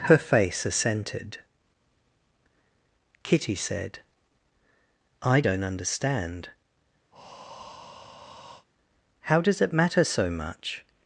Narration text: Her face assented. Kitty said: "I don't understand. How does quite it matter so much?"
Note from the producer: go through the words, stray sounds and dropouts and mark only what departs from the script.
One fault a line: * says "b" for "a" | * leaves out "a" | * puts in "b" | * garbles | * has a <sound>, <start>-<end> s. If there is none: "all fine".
* has a breath, 7.1-8.7 s
* leaves out "quite"